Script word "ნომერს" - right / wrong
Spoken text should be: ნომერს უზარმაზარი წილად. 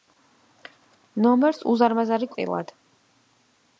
right